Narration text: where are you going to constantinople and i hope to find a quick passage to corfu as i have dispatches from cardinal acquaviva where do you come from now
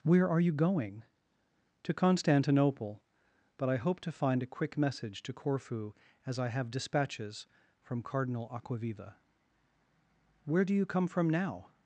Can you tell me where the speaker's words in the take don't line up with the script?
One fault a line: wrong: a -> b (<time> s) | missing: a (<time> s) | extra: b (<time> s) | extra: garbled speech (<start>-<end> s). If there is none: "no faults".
wrong: and -> but (3.6 s)
wrong: passage -> message (4.8 s)